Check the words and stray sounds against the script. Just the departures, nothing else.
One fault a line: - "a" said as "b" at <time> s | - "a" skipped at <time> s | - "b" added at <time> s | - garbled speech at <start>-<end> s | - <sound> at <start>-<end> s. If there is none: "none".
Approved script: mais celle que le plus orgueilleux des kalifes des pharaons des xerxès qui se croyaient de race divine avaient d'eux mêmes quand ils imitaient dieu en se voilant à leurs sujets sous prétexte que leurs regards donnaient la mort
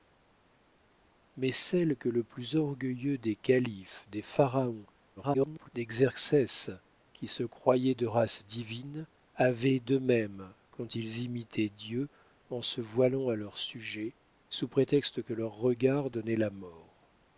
- garbled speech at 5.2-5.7 s